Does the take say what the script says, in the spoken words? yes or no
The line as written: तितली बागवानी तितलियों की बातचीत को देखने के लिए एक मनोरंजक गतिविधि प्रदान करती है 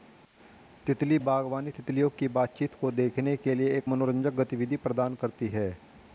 yes